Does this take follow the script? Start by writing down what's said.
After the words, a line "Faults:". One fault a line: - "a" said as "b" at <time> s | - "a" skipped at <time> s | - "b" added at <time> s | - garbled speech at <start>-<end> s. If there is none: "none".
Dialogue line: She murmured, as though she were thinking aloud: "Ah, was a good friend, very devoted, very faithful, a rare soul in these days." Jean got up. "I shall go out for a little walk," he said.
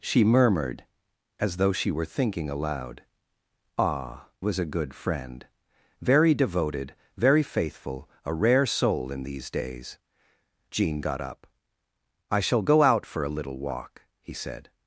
She murmured, as though she were thinking aloud: "Ah, was a good friend, very devoted, very faithful, a rare soul in these days." Jean got up. "I shall go out for a little walk," he said.
Faults:
none